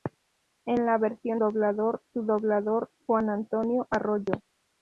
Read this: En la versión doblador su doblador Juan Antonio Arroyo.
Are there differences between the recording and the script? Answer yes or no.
no